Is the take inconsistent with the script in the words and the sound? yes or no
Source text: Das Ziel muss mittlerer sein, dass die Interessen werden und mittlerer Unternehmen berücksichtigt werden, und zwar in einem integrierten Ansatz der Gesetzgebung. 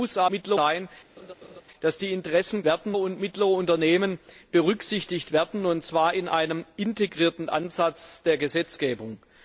yes